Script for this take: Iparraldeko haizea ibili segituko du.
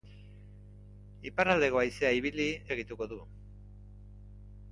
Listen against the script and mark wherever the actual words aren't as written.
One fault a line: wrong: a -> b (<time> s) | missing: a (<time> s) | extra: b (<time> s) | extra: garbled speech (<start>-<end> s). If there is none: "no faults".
no faults